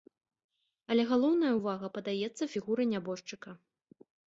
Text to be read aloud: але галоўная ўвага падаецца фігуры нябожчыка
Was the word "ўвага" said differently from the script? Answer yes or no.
no